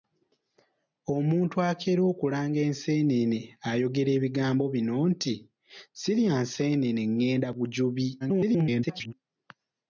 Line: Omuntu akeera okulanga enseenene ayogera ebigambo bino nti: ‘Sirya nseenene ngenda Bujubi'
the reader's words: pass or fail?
fail